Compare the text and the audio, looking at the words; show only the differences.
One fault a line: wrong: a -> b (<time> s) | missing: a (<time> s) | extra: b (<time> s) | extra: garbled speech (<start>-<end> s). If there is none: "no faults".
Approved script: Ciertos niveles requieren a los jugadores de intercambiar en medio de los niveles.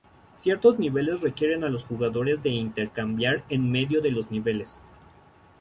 no faults